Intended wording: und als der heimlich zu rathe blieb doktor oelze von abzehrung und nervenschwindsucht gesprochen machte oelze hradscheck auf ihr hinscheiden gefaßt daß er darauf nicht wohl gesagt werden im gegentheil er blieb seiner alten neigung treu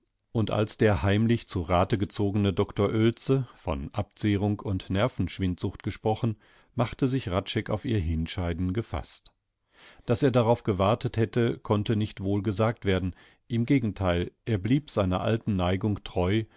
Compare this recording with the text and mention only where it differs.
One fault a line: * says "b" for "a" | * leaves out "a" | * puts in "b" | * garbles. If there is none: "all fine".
* says "gezogene" for "blieb"
* says "sich" for "oelze"
* puts in "gewartet hätte konnte"